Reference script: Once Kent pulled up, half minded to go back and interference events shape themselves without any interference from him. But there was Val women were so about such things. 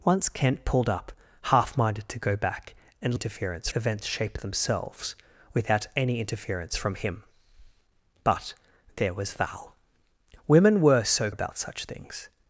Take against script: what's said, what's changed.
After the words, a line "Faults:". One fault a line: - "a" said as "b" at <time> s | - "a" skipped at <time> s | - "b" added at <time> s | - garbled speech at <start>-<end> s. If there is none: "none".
Once Kent pulled up, half minded to go back and interference events shape themselves without any interference from him. But there was Val women were so about such things.
Faults:
none